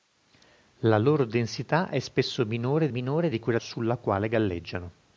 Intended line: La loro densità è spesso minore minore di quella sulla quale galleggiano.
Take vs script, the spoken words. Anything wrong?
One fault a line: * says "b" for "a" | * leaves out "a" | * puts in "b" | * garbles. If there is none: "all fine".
all fine